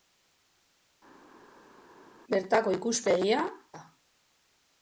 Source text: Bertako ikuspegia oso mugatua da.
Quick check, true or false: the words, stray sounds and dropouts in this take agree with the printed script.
false